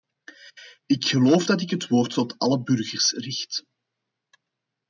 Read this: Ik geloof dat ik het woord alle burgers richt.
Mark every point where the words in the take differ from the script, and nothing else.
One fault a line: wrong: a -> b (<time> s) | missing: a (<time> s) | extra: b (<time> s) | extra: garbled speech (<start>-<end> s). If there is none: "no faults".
extra: tot (2.1 s)